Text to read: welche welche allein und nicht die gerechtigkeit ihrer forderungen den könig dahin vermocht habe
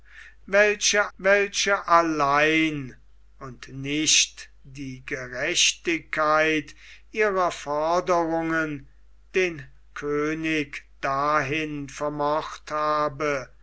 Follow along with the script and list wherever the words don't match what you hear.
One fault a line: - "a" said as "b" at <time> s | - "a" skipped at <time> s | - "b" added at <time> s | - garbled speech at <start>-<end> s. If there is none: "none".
none